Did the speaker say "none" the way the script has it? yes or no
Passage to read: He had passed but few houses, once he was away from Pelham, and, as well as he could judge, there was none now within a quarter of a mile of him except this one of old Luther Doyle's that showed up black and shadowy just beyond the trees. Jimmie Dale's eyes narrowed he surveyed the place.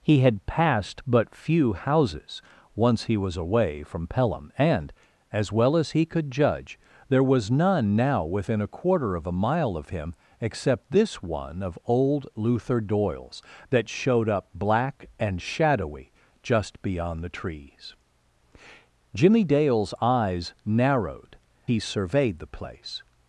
yes